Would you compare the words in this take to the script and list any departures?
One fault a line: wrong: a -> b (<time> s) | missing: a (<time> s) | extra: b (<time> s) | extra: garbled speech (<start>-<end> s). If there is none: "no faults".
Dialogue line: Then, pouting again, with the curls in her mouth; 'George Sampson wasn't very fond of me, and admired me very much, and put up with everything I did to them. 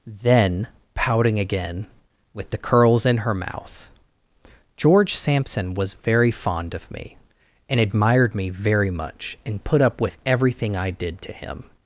wrong: wasn't -> was (5.8 s)
wrong: them -> him (11.3 s)